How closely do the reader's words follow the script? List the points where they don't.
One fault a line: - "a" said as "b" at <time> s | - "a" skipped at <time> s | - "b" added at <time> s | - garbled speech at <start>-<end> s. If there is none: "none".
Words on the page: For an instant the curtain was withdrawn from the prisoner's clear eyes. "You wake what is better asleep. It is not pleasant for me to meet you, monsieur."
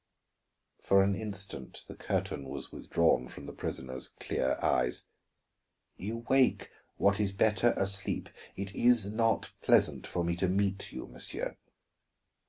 none